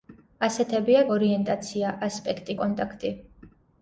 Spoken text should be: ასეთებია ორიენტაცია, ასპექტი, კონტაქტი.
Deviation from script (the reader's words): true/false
false